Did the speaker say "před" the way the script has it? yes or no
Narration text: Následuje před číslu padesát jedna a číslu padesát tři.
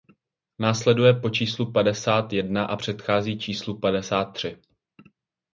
no